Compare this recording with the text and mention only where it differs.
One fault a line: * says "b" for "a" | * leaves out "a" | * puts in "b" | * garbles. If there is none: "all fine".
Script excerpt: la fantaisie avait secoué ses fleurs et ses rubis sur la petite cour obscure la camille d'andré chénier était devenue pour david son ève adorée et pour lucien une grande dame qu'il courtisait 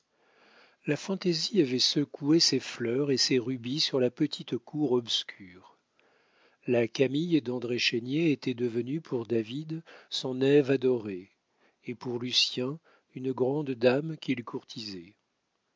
all fine